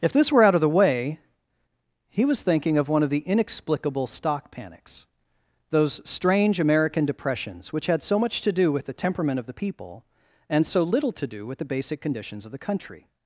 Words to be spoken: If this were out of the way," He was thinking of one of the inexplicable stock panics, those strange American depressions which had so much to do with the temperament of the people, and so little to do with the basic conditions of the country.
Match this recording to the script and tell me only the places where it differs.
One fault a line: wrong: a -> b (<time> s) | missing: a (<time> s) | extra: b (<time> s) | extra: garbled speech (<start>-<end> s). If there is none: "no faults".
no faults